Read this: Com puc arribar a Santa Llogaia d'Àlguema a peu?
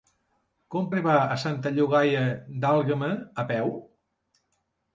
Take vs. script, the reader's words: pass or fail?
fail